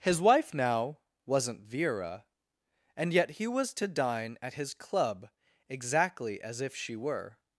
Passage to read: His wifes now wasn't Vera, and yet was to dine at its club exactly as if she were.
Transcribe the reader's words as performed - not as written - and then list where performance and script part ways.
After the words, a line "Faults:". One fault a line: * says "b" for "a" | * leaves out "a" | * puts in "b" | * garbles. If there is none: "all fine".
His wife now wasn't Vera, and yet he was to dine at his club exactly as if she were.
Faults:
* says "wife" for "wifes"
* puts in "he"
* says "his" for "its"